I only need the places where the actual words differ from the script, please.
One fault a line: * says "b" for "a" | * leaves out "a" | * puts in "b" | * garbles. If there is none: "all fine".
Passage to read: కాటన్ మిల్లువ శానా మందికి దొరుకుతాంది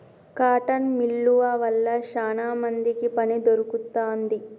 * puts in "వల్ల"
* puts in "పని"